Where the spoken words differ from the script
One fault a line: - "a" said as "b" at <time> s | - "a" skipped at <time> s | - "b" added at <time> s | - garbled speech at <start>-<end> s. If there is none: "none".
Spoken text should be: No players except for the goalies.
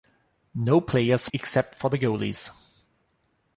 none